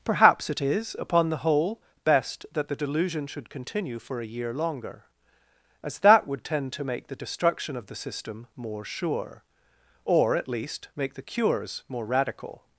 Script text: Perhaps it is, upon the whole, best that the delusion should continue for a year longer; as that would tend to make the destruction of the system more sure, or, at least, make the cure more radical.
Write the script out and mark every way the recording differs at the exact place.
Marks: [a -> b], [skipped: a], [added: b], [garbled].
Perhaps it is, upon the whole, best that the delusion should continue for a year longer; as that would tend to make the destruction of the system more sure, or, at least, make the [cure -> cures] more radical.